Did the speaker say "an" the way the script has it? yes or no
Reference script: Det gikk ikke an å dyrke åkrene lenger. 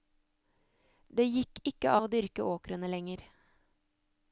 no